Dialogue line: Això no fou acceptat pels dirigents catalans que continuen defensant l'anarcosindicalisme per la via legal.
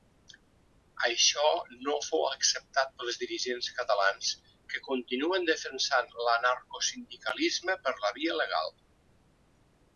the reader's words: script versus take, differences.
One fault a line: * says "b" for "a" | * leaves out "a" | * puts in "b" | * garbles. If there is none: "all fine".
all fine